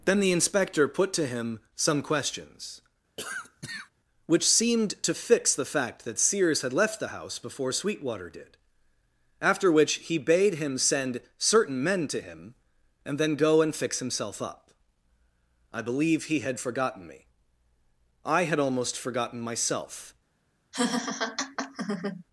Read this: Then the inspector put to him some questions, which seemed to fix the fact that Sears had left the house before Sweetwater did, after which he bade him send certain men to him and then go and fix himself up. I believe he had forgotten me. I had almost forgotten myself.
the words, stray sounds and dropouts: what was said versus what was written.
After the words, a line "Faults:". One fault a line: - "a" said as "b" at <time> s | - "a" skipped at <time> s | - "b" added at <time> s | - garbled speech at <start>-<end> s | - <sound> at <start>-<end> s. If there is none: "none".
Then the inspector put to him some questions, which seemed to fix the fact that Sears had left the house before Sweetwater did, after which he bade him send certain men to him and then go and fix himself up. I believe he had forgotten me. I had almost forgotten myself.
Faults:
- cough at 3.2-3.9 s
- laugh at 20.7-22.2 s